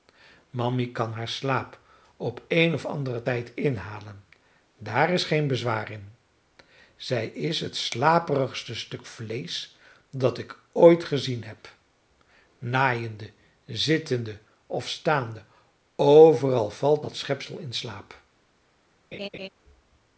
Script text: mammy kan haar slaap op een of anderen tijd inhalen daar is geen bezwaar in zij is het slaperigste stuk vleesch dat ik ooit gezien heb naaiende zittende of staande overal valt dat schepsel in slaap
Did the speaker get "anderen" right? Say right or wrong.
right